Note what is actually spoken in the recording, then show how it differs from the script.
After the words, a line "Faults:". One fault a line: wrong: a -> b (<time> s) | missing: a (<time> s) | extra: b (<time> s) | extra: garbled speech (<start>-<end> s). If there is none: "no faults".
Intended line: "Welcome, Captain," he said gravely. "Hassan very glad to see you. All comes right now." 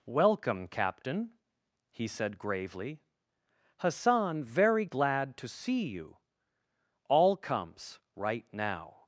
"Welcome, Captain," he said gravely. "Hassan very glad to see you. All comes right now."
Faults:
no faults